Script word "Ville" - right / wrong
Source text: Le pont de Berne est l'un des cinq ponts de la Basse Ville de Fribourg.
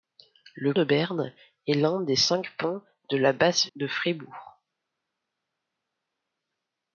wrong